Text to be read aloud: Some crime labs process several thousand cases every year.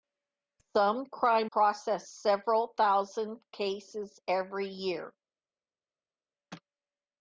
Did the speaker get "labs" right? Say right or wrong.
wrong